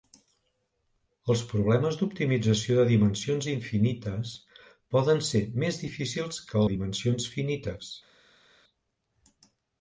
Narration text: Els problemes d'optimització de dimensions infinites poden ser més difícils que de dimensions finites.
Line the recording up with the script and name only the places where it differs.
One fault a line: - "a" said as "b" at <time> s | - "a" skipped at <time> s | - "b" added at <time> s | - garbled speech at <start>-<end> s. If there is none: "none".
none